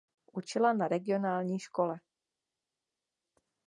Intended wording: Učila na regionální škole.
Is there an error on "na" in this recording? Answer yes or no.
no